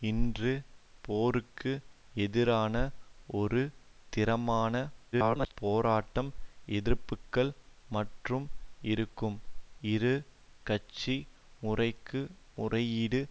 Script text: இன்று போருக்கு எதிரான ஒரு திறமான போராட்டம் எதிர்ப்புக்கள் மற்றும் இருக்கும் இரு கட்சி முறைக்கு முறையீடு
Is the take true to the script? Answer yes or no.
no